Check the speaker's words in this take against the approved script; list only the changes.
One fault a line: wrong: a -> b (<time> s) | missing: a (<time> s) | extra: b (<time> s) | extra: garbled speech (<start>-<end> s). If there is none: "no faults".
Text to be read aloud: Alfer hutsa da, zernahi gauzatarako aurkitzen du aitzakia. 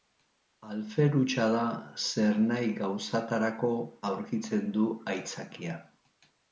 no faults